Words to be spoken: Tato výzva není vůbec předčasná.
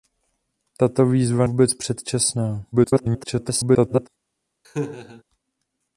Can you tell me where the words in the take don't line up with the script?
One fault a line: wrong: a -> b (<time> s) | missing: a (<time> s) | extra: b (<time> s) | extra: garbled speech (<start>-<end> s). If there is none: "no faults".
missing: není (1.5 s)
extra: garbled speech (2.7-4.1 s)